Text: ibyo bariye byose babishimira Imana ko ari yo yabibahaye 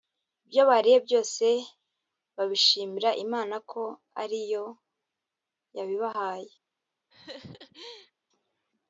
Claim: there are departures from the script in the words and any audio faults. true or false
true